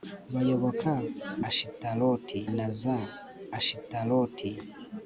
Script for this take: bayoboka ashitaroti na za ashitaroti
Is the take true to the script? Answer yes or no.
yes